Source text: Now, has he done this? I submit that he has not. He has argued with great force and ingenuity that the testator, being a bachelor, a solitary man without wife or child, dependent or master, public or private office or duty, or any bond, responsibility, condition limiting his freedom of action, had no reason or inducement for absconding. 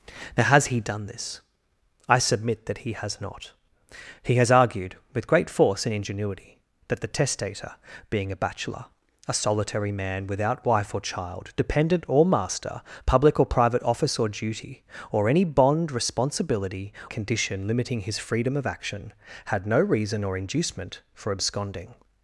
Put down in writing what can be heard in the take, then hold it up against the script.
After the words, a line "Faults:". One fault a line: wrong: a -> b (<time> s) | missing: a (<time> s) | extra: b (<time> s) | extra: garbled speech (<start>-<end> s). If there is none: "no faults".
Now, has he done this? I submit that he has not. He has argued with great force and ingenuity that the testator, being a bachelor, a solitary man without wife or child, dependent or master, public or private office or duty, or any bond, responsibility, condition limiting his freedom of action, had no reason or inducement for absconding.
Faults:
no faults